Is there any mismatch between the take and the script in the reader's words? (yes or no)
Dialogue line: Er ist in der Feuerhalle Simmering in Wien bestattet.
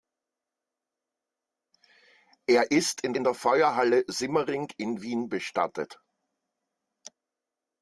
yes